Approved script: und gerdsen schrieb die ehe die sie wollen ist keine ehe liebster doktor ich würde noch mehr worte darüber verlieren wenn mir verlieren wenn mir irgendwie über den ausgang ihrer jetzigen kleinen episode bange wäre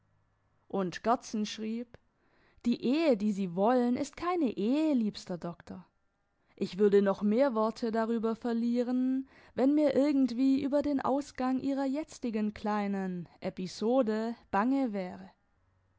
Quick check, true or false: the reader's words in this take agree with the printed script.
false